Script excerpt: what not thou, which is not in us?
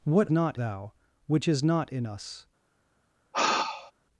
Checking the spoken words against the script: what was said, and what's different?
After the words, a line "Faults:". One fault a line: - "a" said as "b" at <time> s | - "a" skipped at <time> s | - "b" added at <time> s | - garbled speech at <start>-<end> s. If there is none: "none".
what not thou, which is not in us?
Faults:
none